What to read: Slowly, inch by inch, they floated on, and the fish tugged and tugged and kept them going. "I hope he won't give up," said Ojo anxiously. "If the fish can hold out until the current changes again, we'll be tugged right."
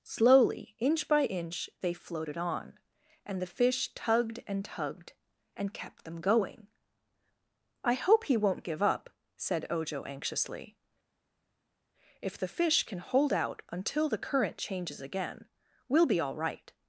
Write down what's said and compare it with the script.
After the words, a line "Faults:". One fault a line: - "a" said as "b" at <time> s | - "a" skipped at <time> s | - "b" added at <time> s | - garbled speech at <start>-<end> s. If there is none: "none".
Slowly, inch by inch, they floated on, and the fish tugged and tugged and kept them going. "I hope he won't give up," said Ojo anxiously. "If the fish can hold out until the current changes again, we'll be all right."
Faults:
- "tugged" said as "all" at 16.2 s